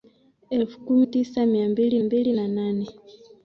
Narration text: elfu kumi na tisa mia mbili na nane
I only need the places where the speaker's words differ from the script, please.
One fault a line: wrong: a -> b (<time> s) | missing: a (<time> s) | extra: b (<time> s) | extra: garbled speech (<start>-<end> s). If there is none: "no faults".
missing: na (1.1 s)
extra: mbili (2.0 s)